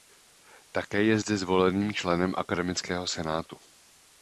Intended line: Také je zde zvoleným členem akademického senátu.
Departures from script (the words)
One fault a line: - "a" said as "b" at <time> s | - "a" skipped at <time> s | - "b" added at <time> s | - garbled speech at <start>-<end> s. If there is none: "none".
none